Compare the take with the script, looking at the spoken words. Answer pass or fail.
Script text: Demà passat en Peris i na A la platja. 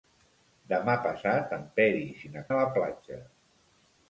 pass